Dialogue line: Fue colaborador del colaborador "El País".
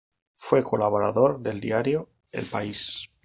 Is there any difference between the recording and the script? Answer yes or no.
yes